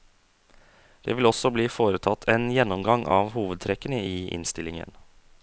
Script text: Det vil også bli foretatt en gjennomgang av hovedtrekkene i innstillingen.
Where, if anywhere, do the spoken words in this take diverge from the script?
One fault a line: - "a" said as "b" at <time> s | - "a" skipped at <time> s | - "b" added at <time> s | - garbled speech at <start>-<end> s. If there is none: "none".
none